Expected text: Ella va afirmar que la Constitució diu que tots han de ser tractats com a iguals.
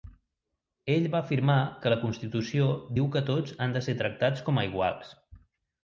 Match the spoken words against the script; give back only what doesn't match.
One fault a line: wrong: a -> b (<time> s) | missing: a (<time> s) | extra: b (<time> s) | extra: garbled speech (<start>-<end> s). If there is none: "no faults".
wrong: Ella -> Ell (0.9 s)